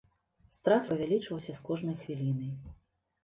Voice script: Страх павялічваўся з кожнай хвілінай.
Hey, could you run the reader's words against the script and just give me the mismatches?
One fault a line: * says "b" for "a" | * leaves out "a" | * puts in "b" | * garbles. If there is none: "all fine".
all fine